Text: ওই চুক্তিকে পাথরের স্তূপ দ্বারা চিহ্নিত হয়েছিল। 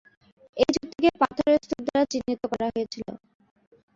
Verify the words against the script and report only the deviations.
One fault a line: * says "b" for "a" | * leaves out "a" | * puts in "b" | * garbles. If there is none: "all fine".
* says "এই" for "ওই"
* puts in "করা"